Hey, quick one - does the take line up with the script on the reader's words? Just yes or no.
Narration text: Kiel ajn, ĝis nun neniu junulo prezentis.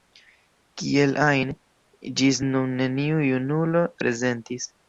yes